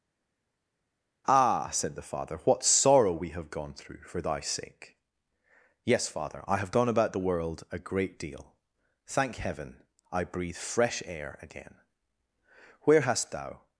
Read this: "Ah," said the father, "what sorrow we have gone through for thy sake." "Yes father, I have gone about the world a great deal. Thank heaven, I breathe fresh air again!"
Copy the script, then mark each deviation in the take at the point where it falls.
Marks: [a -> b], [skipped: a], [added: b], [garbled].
"Ah," said the father, "what sorrow we have gone through for thy sake." "Yes father, I have gone about the world a great deal. Thank heaven, I breathe fresh air again!" [added: Where hast thou]